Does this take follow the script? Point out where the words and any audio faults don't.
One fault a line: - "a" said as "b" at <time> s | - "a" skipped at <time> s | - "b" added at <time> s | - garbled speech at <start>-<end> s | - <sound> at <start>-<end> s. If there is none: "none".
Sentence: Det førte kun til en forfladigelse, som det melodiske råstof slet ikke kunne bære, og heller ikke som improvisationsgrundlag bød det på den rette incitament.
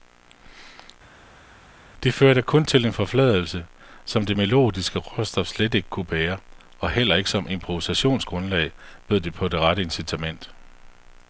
- "den" said as "det" at 9.5 s